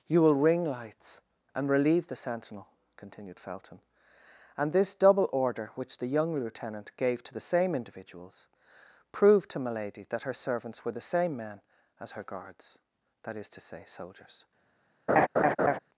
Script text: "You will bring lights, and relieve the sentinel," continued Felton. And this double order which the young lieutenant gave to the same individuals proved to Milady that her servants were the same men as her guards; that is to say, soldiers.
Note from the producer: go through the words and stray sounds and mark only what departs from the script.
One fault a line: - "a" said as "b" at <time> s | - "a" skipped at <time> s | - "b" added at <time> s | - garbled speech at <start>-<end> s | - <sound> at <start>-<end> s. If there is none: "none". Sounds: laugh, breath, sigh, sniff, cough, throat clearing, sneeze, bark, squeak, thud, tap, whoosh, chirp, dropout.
- "bring" said as "ring" at 0.3 s
- laugh at 15.1-15.8 s